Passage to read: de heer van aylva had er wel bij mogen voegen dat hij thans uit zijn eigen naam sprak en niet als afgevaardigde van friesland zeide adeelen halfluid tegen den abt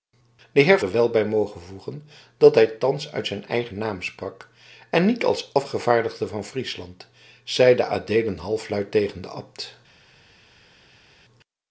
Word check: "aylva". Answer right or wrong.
wrong